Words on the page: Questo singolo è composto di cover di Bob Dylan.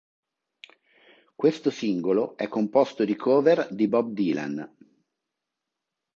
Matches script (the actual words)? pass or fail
pass